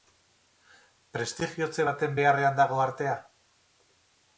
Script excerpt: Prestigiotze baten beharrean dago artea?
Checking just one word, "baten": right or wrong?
right